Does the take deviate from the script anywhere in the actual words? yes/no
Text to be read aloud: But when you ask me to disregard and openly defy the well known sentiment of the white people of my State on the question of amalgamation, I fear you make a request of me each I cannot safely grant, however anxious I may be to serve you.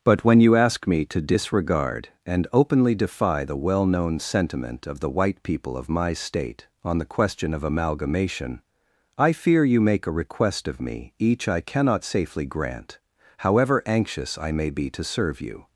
no